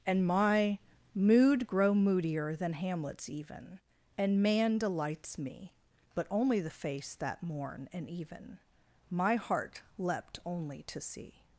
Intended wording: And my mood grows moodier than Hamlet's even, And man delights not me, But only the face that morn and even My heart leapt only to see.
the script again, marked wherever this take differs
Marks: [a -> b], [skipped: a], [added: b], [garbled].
And my mood [grows -> grow] moodier than Hamlet's even, And man delights [skipped: not] me, But only the face that morn and even My heart leapt only to see.